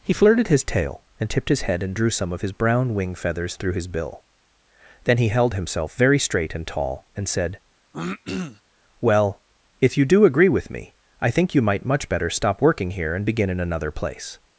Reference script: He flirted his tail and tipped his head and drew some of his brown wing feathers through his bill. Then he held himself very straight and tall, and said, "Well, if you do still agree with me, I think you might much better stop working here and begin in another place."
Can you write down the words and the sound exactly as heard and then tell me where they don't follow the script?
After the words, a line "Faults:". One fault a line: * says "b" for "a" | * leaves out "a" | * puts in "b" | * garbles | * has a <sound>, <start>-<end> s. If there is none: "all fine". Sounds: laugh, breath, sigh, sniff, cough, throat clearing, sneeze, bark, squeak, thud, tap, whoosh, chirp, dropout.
He flirted his tail and tipped his head and drew some of his brown wing feathers through his bill. Then he held himself very straight and tall, and said, "Well, if you do agree with me, I think you might much better stop working here and begin in another place."
Faults:
* has a throat clearing, 7.9-8.6 s
* leaves out "still"